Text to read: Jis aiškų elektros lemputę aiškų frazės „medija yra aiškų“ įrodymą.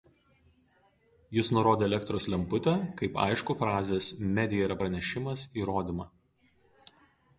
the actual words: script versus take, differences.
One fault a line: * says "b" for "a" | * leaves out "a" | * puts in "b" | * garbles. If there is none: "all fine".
* says "nurodė" for "aiškų"
* puts in "kaip"
* says "pranešimas" for "aiškų"